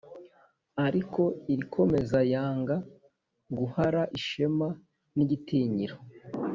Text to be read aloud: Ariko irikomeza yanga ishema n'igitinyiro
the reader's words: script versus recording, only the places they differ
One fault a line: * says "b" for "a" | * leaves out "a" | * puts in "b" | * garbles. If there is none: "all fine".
* puts in "guhara"